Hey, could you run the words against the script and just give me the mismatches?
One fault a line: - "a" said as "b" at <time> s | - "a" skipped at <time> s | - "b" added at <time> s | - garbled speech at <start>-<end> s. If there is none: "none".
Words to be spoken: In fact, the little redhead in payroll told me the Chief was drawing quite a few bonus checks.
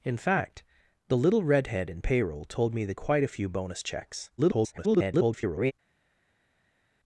- "Chief was drawing" skipped at 3.0 s
- garbled speech at 4.4-5.7 s